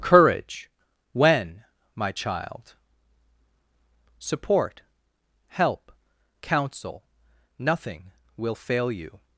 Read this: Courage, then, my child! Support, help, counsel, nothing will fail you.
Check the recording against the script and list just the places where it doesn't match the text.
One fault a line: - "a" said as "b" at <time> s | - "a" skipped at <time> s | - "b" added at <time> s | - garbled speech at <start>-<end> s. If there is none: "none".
- "then" said as "when" at 1.1 s